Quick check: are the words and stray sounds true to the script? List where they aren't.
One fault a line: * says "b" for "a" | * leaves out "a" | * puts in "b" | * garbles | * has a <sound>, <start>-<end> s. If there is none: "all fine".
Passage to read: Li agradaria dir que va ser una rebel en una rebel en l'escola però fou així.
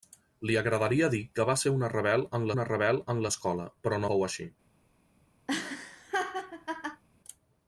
* has a laugh, 5.5-7.0 s